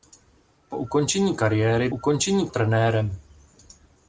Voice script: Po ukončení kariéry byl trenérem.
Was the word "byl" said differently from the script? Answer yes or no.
yes